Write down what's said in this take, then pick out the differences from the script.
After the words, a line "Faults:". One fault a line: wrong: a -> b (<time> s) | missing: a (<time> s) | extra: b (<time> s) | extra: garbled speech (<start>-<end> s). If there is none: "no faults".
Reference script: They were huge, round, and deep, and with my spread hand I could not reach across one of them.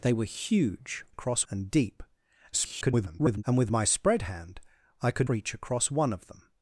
They were huge, across, and deep, [garbled] and with my spread hand I could reach across one of them.
Faults:
wrong: round -> across (1.1 s)
extra: garbled speech (2.5-3.4 s)
missing: not (5.3 s)